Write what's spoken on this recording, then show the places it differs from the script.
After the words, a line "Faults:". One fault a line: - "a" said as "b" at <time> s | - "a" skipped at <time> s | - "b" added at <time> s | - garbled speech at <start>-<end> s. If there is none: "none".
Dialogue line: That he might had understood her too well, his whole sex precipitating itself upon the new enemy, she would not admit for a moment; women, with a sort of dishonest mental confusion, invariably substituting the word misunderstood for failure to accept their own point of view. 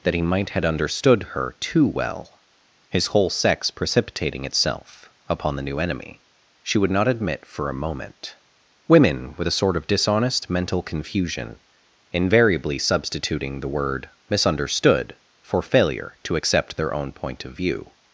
That he might had understood her too well, his whole sex precipitating itself upon the new enemy, she would not admit for a moment; women, with a sort of dishonest mental confusion, invariably substituting the word misunderstood for failure to accept their own point of view.
Faults:
none